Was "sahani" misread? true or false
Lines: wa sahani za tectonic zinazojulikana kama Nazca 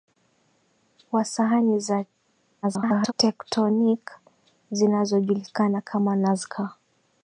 false